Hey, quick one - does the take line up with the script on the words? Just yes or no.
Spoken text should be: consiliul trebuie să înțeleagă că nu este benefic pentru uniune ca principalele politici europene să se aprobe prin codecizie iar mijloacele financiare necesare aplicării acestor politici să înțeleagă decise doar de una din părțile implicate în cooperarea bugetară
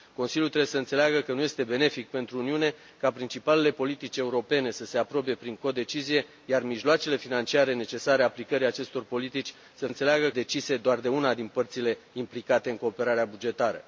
yes